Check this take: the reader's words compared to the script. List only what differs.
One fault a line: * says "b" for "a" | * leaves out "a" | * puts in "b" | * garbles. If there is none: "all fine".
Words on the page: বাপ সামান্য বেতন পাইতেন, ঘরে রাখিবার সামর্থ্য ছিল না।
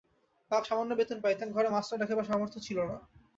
* puts in "মাস্টার"